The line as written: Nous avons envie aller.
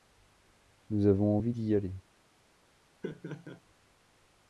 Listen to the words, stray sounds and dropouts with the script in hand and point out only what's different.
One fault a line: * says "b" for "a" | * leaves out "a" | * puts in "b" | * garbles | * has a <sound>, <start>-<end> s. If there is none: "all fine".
* puts in "d'y"
* has a laugh, 3.0-3.6 s